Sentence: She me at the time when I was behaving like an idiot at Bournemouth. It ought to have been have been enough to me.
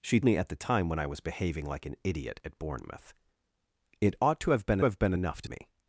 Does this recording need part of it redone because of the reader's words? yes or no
no